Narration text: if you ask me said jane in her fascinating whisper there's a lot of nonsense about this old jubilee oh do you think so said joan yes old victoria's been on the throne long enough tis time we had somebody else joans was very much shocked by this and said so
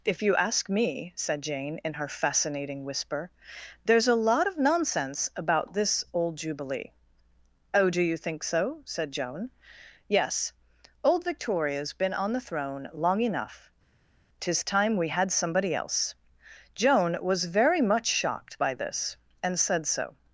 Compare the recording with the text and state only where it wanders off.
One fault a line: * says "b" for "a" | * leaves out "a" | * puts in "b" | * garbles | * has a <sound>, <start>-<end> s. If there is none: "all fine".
* says "joan" for "joans"